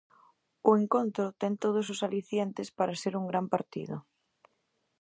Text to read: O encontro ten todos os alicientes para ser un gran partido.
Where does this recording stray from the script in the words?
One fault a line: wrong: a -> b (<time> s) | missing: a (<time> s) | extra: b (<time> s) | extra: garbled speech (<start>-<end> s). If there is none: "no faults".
no faults